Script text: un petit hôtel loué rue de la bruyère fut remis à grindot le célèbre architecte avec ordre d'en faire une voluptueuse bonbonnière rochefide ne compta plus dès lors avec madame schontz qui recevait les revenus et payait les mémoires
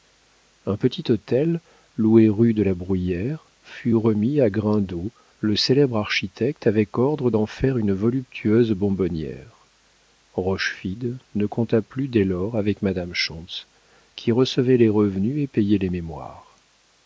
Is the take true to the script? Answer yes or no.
yes